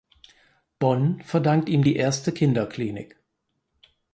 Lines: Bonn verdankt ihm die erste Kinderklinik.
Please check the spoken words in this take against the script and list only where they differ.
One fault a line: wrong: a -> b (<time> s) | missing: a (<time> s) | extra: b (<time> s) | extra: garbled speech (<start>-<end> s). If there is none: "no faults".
no faults